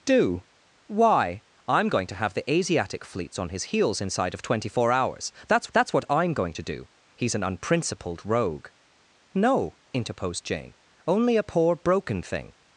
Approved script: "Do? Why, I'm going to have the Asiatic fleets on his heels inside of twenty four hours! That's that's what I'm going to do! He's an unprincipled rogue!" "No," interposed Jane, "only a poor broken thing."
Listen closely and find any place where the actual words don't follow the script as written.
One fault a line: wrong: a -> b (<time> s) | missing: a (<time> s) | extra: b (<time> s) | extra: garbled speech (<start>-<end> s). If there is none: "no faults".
no faults